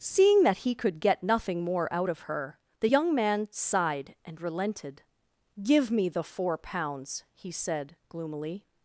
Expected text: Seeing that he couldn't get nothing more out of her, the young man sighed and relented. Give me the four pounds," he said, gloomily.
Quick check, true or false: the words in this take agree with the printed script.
false